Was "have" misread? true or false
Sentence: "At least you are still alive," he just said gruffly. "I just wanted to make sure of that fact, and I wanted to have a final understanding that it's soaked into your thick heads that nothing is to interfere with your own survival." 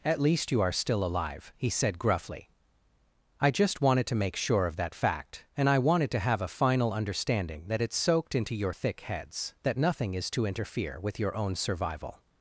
false